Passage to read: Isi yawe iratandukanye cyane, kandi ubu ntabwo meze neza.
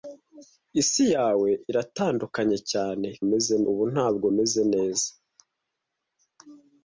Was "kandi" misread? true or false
true